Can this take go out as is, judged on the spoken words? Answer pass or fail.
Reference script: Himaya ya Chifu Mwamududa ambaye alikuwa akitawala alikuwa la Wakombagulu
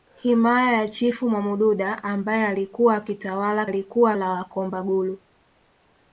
pass